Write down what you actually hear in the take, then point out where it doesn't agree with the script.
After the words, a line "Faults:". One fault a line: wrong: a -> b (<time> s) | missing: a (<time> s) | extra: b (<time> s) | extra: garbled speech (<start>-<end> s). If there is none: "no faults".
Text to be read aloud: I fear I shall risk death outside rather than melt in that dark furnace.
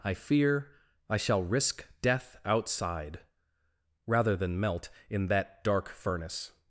I fear I shall risk death outside rather than melt in that dark furnace.
Faults:
no faults